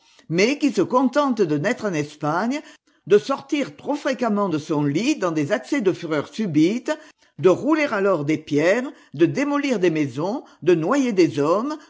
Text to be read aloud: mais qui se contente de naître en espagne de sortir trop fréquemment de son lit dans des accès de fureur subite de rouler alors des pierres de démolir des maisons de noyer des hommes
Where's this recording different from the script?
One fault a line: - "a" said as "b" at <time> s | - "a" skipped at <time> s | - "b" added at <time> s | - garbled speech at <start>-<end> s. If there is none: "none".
none